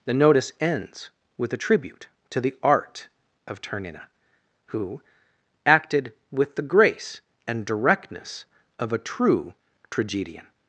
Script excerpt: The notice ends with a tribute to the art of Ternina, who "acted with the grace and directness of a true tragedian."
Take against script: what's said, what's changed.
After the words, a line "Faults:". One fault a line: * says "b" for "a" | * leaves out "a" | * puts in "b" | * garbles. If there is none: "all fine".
The notice ends with a tribute to the art of Ternina, who "acted with the grace and directness of a true tragedian."
Faults:
all fine